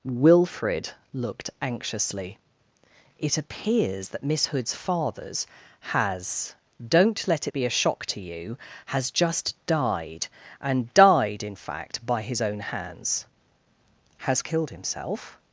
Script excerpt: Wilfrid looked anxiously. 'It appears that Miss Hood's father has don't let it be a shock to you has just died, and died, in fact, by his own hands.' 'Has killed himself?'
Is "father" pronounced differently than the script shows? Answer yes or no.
yes